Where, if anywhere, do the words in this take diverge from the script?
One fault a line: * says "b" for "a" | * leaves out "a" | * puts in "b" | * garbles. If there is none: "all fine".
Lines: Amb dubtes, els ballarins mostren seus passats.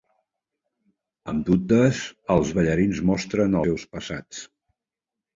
all fine